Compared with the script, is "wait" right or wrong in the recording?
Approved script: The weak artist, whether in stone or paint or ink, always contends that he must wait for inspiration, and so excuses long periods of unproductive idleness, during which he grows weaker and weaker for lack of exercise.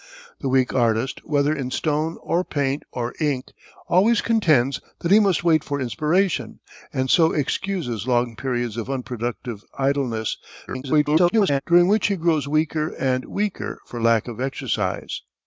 right